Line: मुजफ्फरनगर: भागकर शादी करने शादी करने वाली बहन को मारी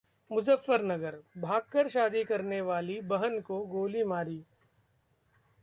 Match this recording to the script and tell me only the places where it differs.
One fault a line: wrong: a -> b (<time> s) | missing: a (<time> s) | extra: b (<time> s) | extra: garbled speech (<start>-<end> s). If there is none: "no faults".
missing: शादी करने (2.6 s)
extra: गोली (3.7 s)